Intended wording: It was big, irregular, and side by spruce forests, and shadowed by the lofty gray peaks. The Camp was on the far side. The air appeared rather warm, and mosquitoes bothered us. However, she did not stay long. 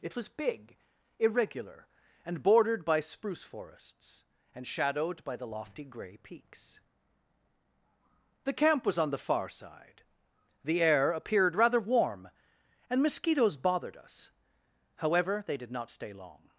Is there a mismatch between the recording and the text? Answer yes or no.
yes